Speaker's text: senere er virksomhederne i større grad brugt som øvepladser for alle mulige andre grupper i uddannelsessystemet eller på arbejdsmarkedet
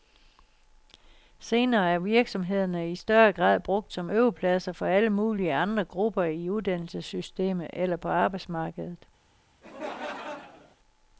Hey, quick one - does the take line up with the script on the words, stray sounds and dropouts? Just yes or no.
no